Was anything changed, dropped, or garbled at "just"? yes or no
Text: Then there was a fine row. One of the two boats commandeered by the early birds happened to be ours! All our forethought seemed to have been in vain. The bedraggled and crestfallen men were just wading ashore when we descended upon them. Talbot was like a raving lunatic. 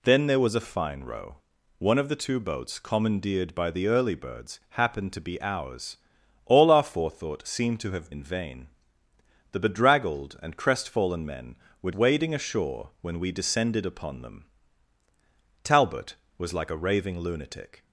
yes